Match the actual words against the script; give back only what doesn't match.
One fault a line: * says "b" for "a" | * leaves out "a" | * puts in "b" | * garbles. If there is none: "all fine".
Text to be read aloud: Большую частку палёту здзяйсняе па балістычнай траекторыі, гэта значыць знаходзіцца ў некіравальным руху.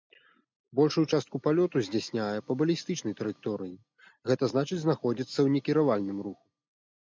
all fine